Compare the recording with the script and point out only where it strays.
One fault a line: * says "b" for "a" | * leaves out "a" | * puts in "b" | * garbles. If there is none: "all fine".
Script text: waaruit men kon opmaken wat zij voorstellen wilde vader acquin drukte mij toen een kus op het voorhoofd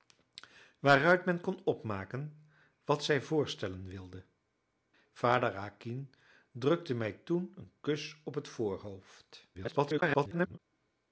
* garbles